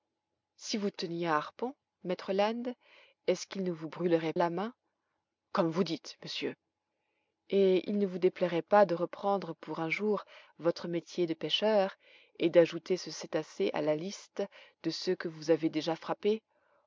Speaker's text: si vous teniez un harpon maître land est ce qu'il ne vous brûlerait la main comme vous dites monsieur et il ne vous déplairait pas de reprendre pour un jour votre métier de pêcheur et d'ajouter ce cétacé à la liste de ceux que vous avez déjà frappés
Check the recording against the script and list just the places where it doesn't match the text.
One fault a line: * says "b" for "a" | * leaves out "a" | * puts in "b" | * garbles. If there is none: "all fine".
all fine